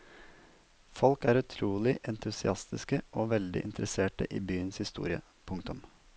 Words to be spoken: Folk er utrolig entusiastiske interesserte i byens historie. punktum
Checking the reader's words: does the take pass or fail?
fail